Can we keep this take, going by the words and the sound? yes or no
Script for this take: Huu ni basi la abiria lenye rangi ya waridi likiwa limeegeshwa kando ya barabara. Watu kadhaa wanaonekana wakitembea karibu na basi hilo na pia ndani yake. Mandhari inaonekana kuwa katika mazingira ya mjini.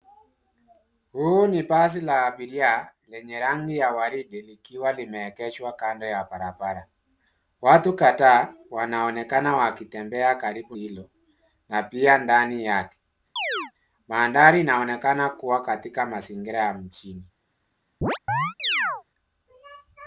no